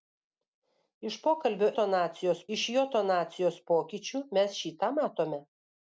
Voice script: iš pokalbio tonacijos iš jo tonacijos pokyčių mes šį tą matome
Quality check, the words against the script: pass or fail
pass